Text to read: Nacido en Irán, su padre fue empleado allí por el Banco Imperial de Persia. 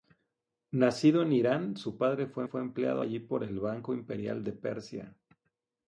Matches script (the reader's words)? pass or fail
fail